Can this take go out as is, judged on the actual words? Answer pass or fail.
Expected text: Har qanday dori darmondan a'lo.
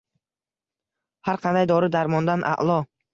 pass